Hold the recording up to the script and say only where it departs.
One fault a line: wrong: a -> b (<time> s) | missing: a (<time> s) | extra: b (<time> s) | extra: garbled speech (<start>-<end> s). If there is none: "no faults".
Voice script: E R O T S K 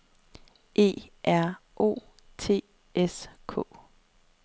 no faults